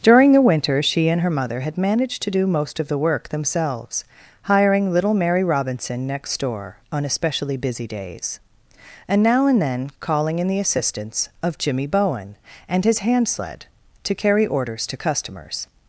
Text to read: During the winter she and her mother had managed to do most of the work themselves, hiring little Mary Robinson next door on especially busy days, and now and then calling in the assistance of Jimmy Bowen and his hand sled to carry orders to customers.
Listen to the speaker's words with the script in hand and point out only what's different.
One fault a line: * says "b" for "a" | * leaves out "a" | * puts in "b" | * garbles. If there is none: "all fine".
all fine